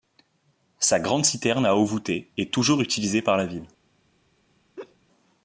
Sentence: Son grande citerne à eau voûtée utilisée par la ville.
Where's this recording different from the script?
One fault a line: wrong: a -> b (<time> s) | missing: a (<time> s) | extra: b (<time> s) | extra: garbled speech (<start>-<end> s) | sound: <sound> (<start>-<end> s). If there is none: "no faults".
wrong: Son -> Sa (0.8 s)
extra: est toujours (2.4 s)
sound: laugh (4.8-5.0 s)